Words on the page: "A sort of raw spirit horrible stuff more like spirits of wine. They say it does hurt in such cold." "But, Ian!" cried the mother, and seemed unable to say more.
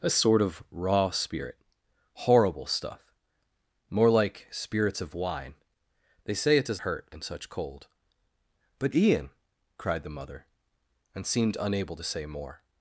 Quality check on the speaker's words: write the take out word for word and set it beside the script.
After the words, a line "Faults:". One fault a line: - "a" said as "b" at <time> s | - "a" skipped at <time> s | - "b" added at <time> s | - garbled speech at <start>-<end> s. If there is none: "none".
"A sort of raw spirit horrible stuff more like spirits of wine. They say it does hurt in such cold." "But, Ian!" cried the mother, and seemed unable to say more.
Faults:
none